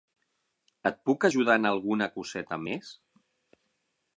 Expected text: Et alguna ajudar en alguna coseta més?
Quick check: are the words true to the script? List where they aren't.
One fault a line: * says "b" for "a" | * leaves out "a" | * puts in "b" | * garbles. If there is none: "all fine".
* says "puc" for "alguna"